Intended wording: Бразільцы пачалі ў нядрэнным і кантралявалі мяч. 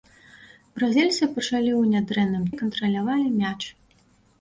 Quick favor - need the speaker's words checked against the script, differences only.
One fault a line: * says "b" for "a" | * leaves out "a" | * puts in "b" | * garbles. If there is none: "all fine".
all fine